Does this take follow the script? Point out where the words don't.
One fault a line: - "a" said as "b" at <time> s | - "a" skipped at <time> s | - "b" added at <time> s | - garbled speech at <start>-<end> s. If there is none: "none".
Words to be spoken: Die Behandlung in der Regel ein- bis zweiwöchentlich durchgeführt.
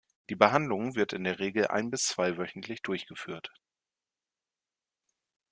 - "wird" added at 0.9 s